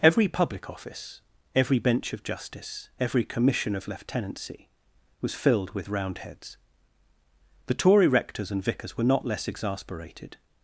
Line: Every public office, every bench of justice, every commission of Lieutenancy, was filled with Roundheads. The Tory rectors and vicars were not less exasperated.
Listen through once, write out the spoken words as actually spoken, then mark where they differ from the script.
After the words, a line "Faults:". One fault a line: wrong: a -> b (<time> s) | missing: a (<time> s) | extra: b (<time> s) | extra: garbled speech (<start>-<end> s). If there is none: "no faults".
Every public office, every bench of justice, every commission of Lieutenancy, was filled with Roundheads. The Tory rectors and vicars were not less exasperated.
Faults:
no faults